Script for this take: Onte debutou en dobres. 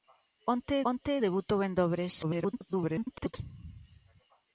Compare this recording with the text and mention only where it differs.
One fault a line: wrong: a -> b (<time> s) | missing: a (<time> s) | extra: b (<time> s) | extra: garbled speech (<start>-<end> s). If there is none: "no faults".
extra: onte (0.9 s)
extra: garbled speech (2.2-3.3 s)